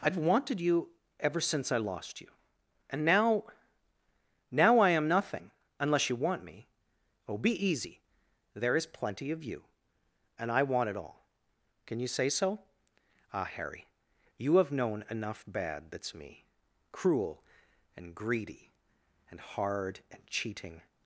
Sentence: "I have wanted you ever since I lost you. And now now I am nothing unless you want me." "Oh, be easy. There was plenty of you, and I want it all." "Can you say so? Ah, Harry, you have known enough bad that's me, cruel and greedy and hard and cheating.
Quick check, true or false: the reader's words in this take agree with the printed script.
false